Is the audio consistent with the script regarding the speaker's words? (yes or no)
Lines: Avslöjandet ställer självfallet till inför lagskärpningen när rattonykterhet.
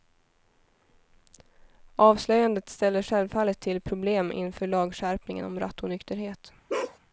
no